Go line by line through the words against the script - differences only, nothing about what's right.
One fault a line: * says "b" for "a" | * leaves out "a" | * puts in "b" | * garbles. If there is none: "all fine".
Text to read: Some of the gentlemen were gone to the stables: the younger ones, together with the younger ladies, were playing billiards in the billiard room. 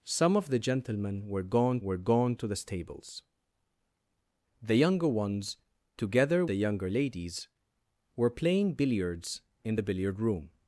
* puts in "were gone"
* leaves out "with"